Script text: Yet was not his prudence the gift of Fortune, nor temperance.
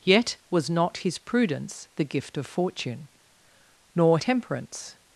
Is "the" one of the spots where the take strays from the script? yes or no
no